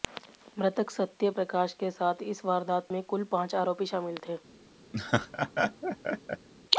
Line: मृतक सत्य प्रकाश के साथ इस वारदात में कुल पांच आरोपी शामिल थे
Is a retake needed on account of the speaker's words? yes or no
no